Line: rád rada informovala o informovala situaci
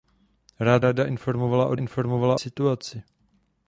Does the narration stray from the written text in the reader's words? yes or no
no